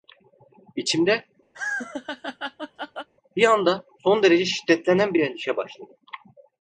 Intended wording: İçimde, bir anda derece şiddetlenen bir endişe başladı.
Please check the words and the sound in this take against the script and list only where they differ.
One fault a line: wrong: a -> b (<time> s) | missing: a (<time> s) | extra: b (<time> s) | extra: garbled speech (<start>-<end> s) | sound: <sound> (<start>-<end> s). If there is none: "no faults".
sound: laugh (1.5-3.1 s)
extra: son (4.0 s)